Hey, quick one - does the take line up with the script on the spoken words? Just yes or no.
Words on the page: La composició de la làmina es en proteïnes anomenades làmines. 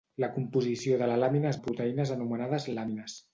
yes